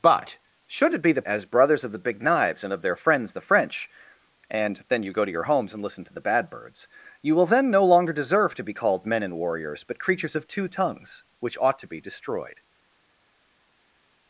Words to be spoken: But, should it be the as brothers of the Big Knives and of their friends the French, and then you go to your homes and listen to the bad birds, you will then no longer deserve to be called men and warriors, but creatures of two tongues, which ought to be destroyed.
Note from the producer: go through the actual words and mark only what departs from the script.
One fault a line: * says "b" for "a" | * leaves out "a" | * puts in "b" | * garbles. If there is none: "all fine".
all fine